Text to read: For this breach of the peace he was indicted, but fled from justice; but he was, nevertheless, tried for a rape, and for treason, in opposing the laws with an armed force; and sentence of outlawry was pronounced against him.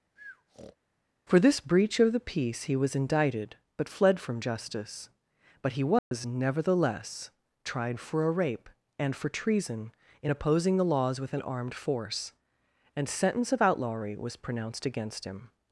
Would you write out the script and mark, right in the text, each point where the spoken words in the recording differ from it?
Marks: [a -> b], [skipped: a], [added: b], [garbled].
For this breach of the peace he was indicted, but fled from justice; but he was, nevertheless, tried for a rape, and for treason, in opposing the laws with an armed force; and sentence of outlawry was pronounced against him.